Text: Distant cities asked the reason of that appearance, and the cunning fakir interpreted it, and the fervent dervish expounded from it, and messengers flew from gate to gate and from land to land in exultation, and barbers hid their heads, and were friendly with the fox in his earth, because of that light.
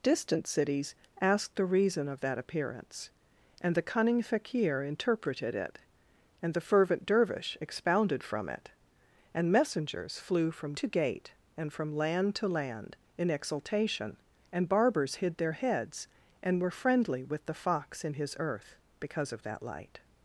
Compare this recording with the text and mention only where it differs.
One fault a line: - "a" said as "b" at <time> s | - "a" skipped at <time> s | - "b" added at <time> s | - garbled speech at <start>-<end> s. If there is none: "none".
- "gate" skipped at 10.7 s